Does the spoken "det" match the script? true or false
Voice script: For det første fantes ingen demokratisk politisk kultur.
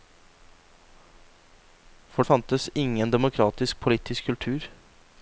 false